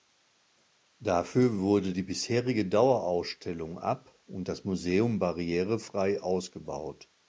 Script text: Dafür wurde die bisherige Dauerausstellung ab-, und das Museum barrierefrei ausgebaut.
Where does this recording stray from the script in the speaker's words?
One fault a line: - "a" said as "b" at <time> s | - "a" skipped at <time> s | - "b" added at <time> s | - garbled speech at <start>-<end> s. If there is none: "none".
none